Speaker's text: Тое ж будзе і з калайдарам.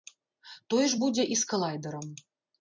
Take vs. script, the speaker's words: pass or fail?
pass